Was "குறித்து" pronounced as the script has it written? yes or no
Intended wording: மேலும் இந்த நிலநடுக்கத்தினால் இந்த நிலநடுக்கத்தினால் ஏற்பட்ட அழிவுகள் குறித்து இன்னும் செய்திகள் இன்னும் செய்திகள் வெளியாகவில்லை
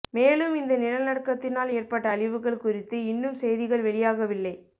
yes